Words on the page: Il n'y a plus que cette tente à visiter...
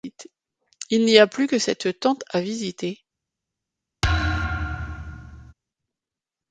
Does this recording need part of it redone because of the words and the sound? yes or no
yes